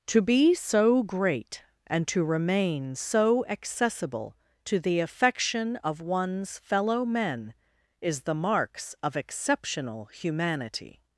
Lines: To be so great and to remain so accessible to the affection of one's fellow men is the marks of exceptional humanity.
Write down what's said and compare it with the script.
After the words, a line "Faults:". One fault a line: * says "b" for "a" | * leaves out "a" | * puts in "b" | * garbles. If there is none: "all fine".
To be so great and to remain so accessible to the affection of one's fellow men is the marks of exceptional humanity.
Faults:
all fine